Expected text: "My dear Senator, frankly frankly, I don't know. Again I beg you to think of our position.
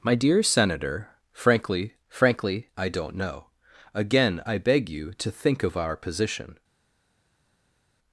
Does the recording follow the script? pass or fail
pass